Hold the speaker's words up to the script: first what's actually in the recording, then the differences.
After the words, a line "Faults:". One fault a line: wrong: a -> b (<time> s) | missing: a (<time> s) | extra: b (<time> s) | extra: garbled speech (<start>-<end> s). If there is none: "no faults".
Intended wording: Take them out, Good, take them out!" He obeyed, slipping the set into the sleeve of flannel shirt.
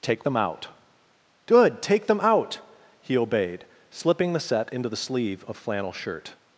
Take them out, Good, take them out!" He obeyed, slipping the set into the sleeve of flannel shirt.
Faults:
no faults